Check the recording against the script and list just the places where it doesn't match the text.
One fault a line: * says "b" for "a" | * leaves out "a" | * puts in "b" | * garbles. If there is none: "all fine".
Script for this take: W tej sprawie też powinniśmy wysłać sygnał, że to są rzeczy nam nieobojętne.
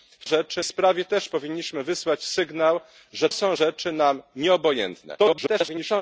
* says "rzeczy" for "tej"
* leaves out "to"
* garbles